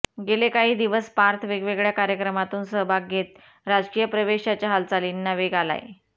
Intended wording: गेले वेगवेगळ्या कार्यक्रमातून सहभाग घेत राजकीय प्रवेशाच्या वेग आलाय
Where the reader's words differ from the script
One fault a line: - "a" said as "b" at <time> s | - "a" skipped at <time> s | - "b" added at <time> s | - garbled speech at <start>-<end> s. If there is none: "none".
- "काही दिवस पार्थ" added at 0.5 s
- "हालचालींना" added at 4.7 s